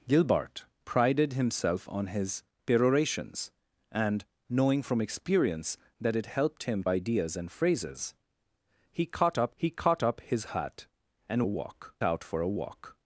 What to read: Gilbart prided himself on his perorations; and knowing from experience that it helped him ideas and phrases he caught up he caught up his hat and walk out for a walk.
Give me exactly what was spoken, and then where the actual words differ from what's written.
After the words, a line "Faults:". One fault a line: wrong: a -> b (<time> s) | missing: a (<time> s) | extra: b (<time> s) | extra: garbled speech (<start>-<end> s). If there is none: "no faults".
Gilbart prided himself on his perorations; and knowing from experience that it helped him ideas and phrases he caught up he caught up his hat and walk out for a walk.
Faults:
no faults